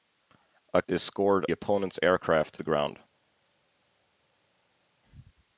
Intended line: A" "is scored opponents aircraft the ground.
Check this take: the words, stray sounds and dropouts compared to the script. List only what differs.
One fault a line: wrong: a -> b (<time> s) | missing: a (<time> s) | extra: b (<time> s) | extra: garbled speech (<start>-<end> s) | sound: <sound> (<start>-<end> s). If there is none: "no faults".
no faults